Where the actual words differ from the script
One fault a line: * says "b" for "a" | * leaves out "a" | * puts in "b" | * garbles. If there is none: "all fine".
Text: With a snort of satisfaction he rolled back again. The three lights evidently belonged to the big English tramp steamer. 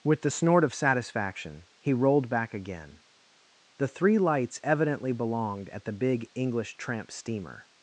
* says "the" for "a"
* says "at" for "to"